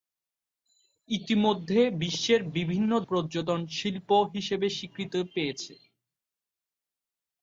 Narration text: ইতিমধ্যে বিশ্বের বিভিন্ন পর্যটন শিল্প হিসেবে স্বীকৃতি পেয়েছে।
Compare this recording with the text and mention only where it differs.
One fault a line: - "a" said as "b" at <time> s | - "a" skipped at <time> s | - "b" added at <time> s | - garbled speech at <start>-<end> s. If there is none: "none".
none